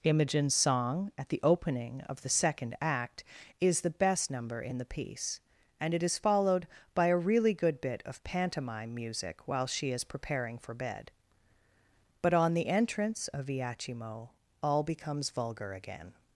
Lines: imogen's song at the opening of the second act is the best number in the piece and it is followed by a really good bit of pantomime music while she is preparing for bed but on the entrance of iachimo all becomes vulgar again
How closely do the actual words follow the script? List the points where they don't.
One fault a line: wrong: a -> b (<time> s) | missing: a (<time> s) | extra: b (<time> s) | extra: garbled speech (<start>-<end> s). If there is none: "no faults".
no faults